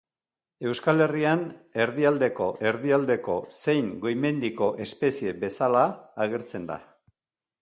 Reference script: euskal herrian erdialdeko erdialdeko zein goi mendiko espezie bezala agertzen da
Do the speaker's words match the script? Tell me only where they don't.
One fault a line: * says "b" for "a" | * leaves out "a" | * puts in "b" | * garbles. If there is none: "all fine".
all fine